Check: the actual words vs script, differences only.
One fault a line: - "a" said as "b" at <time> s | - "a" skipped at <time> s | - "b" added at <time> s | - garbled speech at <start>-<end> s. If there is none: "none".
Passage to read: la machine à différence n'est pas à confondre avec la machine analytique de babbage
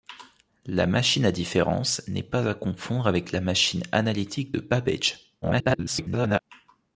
- garbled speech at 5.4-6.4 s